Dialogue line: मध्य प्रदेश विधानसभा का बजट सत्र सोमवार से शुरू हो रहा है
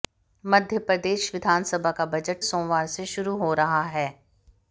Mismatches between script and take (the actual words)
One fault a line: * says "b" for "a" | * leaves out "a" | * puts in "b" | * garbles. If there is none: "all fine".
* leaves out "सत्र"